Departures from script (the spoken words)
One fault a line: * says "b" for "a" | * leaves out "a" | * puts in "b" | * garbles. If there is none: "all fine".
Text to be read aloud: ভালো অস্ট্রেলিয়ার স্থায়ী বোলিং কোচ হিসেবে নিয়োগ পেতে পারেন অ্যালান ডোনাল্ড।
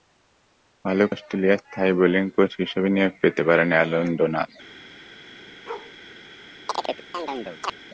all fine